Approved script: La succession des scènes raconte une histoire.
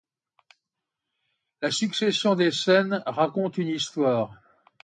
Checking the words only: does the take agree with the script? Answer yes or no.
yes